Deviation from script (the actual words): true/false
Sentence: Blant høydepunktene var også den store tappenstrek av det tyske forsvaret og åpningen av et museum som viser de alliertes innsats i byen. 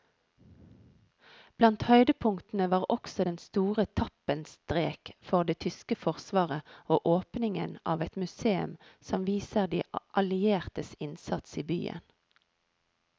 true